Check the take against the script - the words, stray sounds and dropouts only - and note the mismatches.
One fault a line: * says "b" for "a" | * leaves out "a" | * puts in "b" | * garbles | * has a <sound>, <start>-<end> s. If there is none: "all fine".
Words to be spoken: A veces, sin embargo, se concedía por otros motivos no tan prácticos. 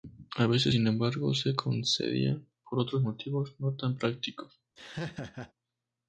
* has a laugh, 4.8-5.5 s